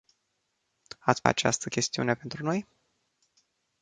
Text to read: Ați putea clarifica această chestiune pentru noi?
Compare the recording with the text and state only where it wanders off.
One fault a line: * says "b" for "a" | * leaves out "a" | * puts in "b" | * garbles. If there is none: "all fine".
* leaves out "putea clarifica"